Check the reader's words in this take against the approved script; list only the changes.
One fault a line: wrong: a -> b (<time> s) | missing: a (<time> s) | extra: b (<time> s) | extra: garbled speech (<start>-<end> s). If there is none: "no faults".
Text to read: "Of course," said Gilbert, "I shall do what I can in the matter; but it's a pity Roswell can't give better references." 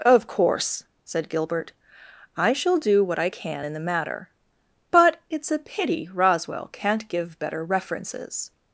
no faults